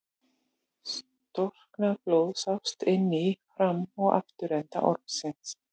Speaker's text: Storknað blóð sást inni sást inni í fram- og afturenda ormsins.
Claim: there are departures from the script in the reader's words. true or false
true